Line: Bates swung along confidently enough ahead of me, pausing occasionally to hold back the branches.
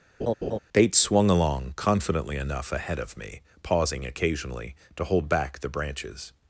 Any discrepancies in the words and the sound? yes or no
yes